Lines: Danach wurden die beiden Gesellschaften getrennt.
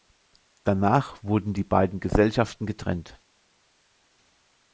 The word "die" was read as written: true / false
true